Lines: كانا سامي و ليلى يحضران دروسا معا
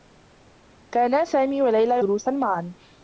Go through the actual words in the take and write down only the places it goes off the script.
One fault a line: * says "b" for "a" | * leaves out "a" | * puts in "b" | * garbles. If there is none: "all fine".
* leaves out "يحضران"